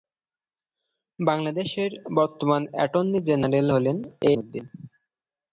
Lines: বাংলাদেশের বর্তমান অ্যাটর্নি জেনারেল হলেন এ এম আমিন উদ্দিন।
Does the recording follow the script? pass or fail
fail